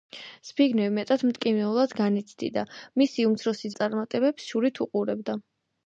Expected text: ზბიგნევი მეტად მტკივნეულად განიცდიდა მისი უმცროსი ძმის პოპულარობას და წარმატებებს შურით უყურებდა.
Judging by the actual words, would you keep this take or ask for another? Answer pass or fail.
fail